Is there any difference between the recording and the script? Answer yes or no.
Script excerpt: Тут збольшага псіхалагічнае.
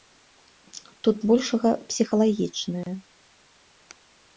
no